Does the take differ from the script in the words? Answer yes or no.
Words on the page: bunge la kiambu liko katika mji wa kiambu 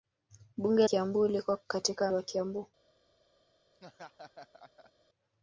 yes